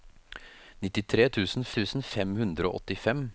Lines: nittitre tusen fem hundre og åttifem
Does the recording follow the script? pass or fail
fail